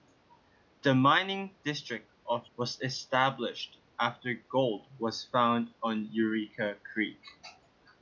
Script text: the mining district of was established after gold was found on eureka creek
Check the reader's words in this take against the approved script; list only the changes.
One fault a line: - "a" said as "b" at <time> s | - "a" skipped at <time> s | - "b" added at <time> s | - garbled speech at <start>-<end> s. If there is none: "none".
none